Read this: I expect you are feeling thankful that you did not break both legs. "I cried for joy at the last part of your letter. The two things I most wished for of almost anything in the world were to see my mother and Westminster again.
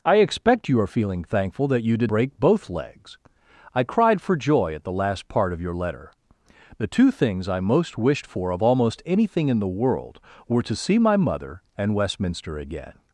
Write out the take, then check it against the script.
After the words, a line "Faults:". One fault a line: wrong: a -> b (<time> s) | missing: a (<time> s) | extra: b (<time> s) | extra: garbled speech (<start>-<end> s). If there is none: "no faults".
I expect you are feeling thankful that you did break both legs. "I cried for joy at the last part of your letter. The two things I most wished for of almost anything in the world were to see my mother and Westminster again.
Faults:
missing: not (2.1 s)